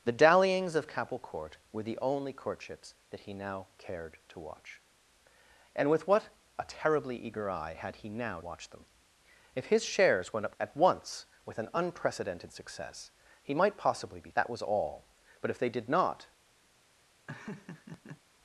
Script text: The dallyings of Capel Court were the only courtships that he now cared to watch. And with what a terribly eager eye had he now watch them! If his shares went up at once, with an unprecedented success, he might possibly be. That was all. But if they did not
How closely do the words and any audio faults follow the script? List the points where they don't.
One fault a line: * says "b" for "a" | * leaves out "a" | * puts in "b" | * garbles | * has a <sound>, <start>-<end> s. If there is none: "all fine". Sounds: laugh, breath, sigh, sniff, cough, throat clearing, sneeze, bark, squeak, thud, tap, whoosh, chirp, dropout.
* has a laugh, 17.3-18.2 s